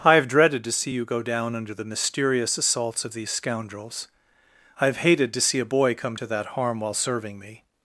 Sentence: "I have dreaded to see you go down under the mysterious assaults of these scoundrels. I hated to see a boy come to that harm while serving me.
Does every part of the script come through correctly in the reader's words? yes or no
no